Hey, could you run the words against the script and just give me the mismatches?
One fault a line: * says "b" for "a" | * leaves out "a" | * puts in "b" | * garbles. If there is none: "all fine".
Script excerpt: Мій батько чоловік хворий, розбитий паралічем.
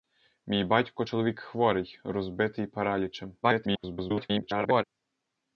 * garbles